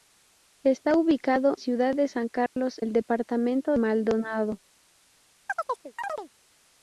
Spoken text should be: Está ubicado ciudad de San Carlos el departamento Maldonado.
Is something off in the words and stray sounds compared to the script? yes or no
yes